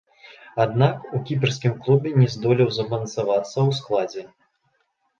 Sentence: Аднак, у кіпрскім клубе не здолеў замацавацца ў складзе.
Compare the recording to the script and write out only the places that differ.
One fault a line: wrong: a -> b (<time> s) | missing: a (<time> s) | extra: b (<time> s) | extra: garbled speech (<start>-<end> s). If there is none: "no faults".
no faults